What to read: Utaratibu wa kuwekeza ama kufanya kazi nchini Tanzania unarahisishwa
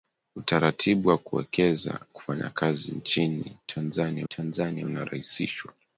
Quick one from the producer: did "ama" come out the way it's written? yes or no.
no